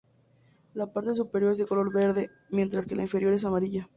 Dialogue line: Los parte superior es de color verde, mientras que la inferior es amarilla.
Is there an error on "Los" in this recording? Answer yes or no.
yes